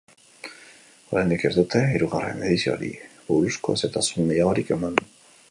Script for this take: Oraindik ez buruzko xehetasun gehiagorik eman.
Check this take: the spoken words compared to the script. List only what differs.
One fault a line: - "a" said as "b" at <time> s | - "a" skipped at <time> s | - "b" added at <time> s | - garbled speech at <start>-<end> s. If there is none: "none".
- "dute hirugarren edizioari" added at 1.6 s